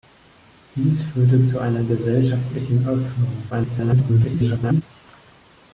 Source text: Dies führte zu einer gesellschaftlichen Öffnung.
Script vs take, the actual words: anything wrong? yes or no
yes